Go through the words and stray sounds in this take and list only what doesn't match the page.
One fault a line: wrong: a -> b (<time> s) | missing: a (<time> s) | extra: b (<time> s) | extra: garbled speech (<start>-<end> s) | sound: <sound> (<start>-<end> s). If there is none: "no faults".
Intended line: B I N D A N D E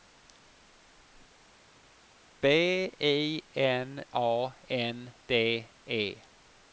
missing: D (4.1 s)